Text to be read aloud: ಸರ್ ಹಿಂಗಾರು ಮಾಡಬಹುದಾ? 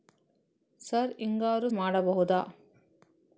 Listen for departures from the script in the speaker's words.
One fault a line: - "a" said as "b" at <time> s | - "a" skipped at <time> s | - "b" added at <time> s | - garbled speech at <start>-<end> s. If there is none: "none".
none